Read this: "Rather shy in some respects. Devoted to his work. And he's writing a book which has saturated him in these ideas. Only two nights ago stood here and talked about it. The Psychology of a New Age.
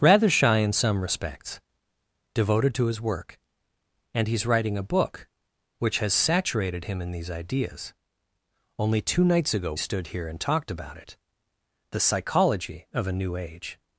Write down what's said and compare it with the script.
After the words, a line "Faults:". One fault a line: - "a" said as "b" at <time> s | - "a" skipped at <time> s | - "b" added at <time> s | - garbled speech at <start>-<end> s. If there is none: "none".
"Rather shy in some respects. Devoted to his work. And he's writing a book which has saturated him in these ideas. Only two nights ago stood here and talked about it. The Psychology of a New Age.
Faults:
none